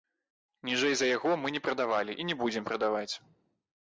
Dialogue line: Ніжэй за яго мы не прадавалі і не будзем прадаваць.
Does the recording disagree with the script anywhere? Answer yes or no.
no